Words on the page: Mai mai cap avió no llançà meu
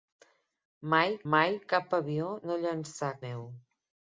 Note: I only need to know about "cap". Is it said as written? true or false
true